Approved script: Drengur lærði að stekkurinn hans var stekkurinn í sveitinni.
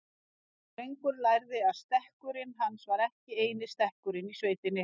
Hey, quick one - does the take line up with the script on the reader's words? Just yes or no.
no